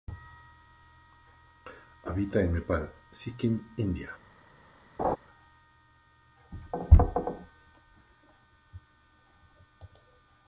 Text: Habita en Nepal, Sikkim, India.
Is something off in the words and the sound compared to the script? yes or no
yes